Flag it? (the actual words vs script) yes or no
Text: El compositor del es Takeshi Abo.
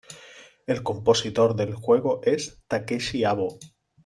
yes